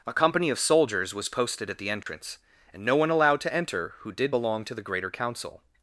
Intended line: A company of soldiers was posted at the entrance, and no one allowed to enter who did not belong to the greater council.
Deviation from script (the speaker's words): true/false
true